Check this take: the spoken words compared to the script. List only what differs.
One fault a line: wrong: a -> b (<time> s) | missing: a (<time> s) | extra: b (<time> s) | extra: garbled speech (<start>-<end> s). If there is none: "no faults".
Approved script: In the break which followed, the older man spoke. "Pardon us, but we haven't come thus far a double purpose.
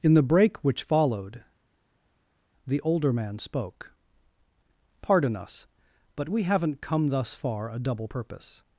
no faults